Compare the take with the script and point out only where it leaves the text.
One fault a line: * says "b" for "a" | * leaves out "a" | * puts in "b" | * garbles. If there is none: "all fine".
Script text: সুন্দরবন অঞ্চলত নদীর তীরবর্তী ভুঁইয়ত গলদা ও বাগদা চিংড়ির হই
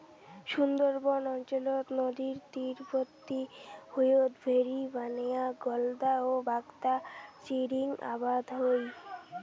* puts in "ভেরি বানেয়া"
* puts in "আবাদ"